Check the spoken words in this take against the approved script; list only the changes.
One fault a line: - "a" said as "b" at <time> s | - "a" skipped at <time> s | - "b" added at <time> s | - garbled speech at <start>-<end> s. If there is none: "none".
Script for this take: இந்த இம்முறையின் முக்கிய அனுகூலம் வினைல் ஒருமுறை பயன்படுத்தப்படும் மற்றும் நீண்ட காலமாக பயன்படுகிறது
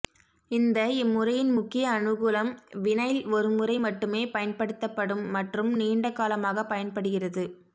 - "மட்டுமே" added at 3.9 s